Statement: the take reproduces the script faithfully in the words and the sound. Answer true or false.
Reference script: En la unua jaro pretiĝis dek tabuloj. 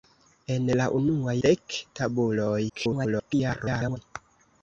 false